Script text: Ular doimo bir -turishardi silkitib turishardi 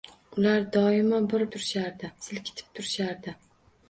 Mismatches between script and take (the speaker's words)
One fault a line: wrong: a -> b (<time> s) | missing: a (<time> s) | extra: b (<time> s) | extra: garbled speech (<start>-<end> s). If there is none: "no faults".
no faults